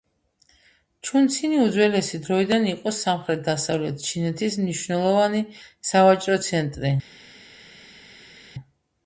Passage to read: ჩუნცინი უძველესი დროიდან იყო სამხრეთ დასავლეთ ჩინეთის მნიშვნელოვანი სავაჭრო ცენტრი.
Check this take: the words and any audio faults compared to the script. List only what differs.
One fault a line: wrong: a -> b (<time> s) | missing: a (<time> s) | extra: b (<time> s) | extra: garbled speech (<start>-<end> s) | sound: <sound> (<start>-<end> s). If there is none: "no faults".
no faults